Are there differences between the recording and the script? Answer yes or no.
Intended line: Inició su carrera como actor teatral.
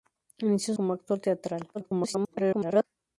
yes